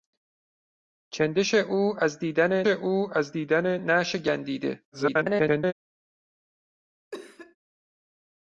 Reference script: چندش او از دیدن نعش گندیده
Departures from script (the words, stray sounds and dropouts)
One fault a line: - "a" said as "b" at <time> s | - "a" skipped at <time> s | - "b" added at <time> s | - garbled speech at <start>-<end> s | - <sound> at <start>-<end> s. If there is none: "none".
- "او از دیدن" added at 2.7 s
- garbled speech at 4.9-5.7 s
- cough at 7.1-7.6 s